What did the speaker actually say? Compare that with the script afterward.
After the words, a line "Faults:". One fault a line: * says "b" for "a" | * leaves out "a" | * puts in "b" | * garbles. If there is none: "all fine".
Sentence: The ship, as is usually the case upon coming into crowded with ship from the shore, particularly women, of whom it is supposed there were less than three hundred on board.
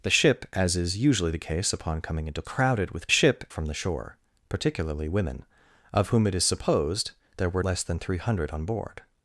The ship, as is usually the case upon coming into crowded with ship from the shore, particularly women, of whom it is supposed there were less than three hundred on board.
Faults:
all fine